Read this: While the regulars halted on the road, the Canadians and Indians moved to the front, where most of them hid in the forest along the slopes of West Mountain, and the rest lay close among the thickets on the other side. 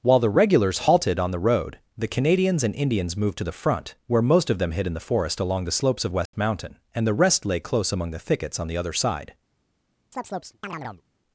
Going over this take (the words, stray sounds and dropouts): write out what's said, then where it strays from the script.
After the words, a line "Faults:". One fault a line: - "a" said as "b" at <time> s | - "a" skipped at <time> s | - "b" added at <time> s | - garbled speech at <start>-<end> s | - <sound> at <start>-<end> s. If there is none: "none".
While the regulars halted on the road, the Canadians and Indians moved to the front, where most of them hid in the forest along the slopes of West Mountain, and the rest lay close among the thickets on the other side.
Faults:
- dropout at 6.3-6.3 s
- chirp at 10.1-11.0 s